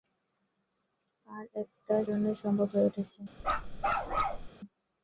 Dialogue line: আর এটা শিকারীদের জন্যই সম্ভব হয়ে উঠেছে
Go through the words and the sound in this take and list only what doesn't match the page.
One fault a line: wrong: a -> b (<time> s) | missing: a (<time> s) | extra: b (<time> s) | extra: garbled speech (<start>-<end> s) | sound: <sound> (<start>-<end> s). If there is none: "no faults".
missing: শিকারীদের (1.9 s)
sound: bark (3.4-4.5 s)